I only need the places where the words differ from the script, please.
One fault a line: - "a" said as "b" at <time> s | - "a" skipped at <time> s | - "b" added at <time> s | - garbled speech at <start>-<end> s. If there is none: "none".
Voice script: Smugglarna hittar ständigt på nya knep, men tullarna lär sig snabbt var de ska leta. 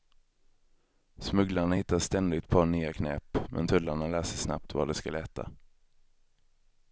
none